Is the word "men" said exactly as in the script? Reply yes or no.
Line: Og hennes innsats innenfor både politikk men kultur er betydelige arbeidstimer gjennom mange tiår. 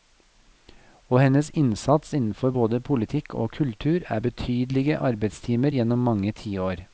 no